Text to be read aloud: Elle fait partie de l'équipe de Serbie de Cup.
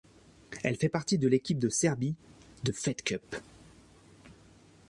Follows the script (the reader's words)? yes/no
no